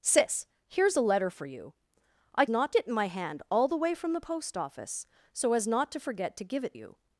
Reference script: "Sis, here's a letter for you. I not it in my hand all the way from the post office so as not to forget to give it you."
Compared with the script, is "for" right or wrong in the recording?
right